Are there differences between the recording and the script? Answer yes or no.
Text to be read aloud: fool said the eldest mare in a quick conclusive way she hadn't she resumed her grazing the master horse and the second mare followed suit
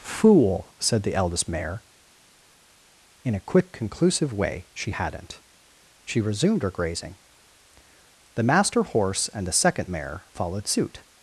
no